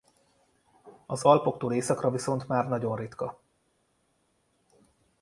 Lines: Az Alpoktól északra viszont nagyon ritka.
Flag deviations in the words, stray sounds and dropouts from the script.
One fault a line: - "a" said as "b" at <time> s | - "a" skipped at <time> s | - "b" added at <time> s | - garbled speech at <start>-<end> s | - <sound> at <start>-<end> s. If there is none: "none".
- "már" added at 2.5 s